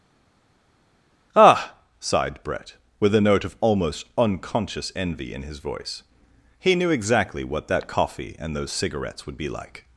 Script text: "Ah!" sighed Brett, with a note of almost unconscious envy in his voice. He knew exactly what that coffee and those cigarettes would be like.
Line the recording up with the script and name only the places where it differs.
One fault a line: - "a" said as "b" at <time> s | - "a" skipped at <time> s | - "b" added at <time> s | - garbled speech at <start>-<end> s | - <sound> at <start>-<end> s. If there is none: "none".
none